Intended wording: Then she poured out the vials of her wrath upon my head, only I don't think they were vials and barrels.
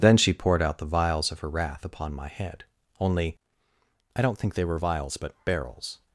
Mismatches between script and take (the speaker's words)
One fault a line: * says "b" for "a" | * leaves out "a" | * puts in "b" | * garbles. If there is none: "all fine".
* says "but" for "and"